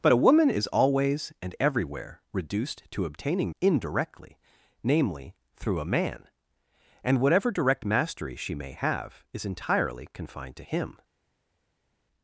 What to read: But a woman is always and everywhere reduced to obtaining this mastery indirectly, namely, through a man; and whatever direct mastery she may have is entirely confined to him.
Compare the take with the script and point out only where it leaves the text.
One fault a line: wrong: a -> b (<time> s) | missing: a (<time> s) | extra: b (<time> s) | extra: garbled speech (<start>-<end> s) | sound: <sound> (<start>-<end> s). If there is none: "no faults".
missing: this mastery (3.5 s)